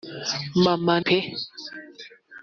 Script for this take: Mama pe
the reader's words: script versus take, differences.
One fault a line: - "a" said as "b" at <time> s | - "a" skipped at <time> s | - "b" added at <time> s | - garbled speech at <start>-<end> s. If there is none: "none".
none